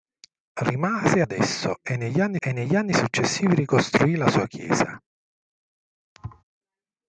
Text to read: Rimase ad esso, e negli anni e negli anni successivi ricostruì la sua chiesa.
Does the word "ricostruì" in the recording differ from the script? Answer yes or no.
no